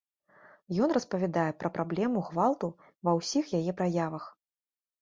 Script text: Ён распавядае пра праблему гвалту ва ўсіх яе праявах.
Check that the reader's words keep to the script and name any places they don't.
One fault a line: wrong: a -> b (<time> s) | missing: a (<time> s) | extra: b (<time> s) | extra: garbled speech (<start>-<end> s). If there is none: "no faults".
no faults